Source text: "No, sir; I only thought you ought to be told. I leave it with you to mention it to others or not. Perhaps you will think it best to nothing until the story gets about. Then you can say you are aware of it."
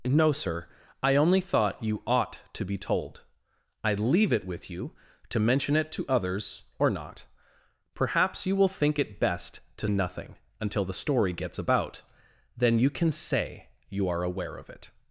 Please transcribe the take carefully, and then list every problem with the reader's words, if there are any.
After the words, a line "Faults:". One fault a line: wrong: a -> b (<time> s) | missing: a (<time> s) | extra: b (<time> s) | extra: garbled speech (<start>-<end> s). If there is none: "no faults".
"No, sir; I only thought you ought to be told. I leave it with you to mention it to others or not. Perhaps you will think it best to nothing until the story gets about. Then you can say you are aware of it."
Faults:
no faults